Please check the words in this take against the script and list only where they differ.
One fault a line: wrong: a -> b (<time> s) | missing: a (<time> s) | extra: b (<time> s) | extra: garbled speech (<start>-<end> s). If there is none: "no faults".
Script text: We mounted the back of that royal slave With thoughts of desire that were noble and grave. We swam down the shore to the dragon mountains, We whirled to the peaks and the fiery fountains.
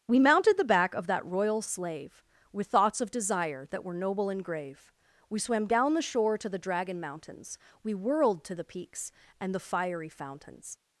no faults